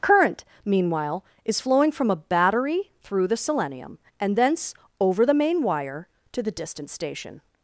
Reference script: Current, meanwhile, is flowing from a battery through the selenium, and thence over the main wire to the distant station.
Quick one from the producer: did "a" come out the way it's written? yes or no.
yes